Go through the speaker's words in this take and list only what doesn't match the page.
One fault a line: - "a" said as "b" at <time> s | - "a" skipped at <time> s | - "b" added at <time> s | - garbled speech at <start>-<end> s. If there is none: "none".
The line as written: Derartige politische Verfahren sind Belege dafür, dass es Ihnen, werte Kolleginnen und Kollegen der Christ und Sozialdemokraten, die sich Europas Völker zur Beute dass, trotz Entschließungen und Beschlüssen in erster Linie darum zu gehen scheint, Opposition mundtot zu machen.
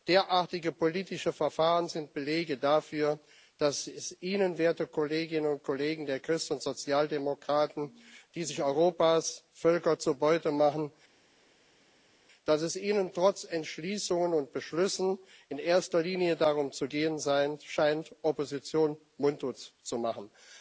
- "dass" said as "machen" at 10.5 s